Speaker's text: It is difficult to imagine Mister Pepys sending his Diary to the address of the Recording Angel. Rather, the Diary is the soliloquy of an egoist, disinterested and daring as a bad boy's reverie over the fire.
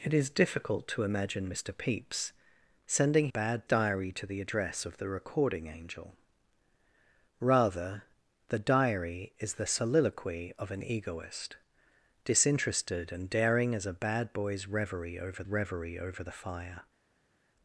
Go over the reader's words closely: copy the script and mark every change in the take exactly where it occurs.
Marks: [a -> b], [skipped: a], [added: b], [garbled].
It is difficult to imagine Mister Pepys sending [his -> bad] Diary to the address of the Recording Angel. Rather, the Diary is the soliloquy of an egoist, disinterested and daring as a bad boy's reverie over [added: reverie over] the fire.